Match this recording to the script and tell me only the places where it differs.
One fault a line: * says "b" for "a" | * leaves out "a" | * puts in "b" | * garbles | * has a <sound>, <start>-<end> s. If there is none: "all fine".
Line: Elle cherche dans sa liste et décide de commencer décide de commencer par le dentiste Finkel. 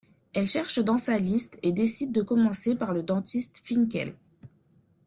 * leaves out "décide de commencer"